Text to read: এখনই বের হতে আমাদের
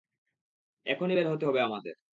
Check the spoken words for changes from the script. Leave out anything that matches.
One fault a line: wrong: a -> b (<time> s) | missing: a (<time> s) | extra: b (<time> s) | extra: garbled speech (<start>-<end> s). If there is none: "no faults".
extra: হবে (1.4 s)